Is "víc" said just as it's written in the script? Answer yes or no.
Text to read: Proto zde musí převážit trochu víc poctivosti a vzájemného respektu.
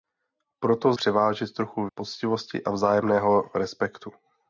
no